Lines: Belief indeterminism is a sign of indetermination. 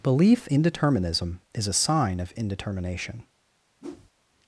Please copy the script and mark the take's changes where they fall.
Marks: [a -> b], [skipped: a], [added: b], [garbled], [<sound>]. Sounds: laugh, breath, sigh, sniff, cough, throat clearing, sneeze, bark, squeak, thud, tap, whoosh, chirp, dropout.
Belief indeterminism is a sign of indetermination. [whoosh]